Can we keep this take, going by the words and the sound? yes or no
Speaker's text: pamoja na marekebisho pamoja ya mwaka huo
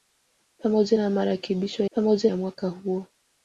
yes